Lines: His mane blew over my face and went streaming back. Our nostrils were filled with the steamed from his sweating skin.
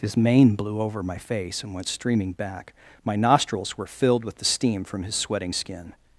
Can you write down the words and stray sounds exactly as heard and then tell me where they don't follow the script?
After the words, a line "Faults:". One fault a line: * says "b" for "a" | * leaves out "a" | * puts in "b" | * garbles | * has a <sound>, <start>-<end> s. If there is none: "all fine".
His mane blew over my face and went streaming back. My nostrils were filled with the steam from his sweating skin.
Faults:
* says "My" for "Our"
* says "steam" for "steamed"